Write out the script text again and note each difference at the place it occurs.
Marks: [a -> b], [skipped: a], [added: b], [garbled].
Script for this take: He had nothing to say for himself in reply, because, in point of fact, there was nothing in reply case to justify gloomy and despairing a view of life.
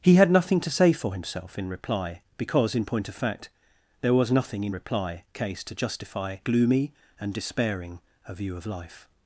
He had nothing to say for himself in reply, because, in point of fact, there was nothing in reply case to justify gloomy and despairing a view of life.